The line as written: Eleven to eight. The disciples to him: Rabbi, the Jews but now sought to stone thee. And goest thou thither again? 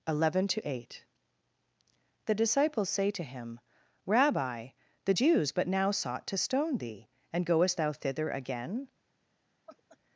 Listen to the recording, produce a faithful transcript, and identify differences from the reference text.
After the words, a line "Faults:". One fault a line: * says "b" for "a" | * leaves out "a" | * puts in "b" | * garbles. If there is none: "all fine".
Eleven to eight. The disciples say to him: Rabbi, the Jews but now sought to stone thee. And goest thou thither again?
Faults:
* puts in "say"